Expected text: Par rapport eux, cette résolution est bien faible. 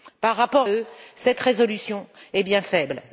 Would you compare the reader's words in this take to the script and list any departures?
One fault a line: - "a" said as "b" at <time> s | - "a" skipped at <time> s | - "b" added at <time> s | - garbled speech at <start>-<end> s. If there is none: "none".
none